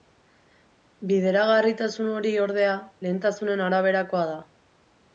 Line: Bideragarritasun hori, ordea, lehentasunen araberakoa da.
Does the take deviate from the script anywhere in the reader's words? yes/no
no